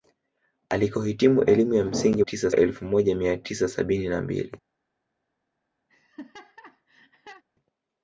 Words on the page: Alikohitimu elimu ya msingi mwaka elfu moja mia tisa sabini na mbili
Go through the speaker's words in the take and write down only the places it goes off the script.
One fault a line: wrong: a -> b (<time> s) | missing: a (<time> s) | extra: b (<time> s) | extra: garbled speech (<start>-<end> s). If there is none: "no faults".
wrong: mwaka -> tisa (2.2 s)